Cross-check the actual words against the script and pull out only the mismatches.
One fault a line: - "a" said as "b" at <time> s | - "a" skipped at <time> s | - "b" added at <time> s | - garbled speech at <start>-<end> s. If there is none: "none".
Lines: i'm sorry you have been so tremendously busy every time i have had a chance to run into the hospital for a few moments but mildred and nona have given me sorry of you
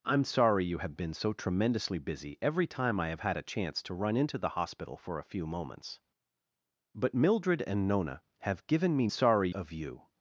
none